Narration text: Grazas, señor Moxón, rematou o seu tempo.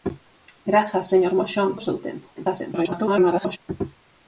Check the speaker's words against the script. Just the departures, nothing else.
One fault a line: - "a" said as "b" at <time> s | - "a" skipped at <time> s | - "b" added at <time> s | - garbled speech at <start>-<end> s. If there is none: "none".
- "rematou" skipped at 1.7 s
- garbled speech at 2.4-3.6 s